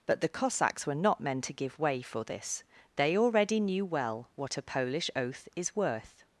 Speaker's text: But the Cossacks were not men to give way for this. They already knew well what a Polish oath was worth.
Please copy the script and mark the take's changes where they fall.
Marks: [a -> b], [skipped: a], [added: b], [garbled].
But the Cossacks were not men to give way for this. They already knew well what a Polish oath [was -> is] worth.